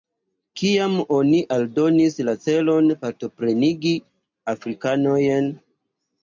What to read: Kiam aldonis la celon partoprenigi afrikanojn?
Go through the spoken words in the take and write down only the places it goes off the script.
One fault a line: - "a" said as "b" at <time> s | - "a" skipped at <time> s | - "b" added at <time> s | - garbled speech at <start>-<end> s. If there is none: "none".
- "oni" added at 1.2 s